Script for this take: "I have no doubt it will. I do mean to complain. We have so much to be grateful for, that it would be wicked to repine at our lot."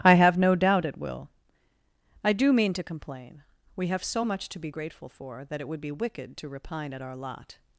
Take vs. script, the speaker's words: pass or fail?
pass